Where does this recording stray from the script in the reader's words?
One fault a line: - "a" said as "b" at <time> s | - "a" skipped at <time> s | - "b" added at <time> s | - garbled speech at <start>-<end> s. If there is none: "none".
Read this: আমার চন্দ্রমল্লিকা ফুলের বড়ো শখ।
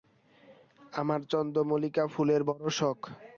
none